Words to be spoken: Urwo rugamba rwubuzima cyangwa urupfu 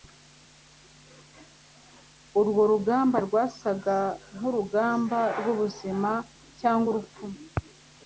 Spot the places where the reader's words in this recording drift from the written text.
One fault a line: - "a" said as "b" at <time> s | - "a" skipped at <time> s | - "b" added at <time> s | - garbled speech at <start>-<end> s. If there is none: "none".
- "rwasaga nkurugamba" added at 3.2 s